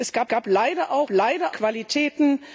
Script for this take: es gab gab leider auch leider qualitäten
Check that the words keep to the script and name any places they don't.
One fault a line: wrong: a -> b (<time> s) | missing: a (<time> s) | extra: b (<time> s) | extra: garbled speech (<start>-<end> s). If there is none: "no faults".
no faults